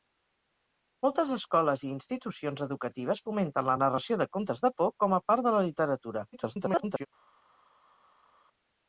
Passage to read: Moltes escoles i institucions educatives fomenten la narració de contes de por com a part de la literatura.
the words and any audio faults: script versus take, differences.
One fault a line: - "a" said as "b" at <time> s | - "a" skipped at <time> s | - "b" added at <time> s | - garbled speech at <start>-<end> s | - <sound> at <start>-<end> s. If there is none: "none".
- garbled speech at 6.3-7.1 s